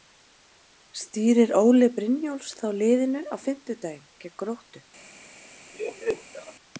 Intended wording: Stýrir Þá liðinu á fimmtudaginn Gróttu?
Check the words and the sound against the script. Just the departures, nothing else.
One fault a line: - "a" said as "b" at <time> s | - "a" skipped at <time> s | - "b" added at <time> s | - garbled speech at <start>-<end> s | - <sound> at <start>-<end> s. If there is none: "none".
- "Óli Brynjólfs" added at 1.6 s
- "gegn" added at 4.3 s
- laugh at 5.7-6.5 s